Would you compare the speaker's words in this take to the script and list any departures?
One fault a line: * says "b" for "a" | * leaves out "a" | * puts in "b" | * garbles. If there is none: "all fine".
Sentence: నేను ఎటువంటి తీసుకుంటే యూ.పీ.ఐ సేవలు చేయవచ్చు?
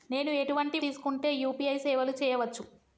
all fine